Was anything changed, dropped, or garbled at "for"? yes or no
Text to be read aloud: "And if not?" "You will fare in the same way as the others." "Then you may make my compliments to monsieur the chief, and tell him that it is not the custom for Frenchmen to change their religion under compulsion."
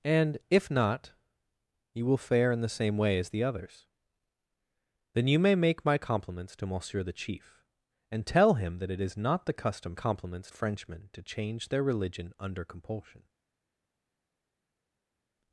yes